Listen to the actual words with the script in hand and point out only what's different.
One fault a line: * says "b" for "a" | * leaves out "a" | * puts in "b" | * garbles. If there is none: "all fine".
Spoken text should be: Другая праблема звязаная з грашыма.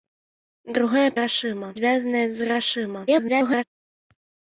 * says "грашыма" for "праблема"
* garbles